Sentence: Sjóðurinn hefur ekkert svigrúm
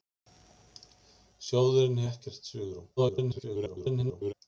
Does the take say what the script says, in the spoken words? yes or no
no